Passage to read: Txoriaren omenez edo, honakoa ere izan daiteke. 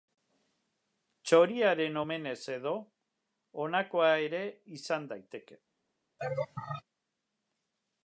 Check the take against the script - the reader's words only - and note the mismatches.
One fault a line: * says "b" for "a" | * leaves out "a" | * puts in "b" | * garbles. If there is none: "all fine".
all fine